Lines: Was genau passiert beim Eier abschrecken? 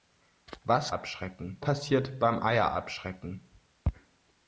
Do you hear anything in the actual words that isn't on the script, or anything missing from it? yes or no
yes